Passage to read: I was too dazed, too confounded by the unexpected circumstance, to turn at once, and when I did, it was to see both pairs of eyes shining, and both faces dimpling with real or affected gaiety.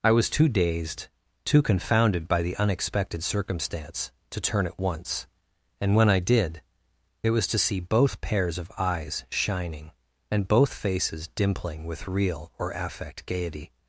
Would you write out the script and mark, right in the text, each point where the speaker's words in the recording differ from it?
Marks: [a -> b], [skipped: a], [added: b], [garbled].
I was too dazed, too confounded by the unexpected circumstance, to turn at once, and when I did, it was to see both pairs of eyes shining, and both faces dimpling with real or [affected -> affect] gaiety.